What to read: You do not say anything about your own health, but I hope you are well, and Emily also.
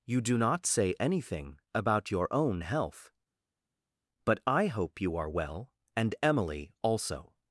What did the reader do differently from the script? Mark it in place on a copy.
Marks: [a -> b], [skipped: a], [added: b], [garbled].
You do not say anything about your own health, but I hope you are well, and Emily also.